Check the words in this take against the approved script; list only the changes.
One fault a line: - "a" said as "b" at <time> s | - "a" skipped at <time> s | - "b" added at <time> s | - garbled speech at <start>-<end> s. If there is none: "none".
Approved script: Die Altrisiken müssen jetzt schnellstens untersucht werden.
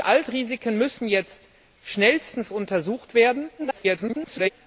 - garbled speech at 3.6-4.5 s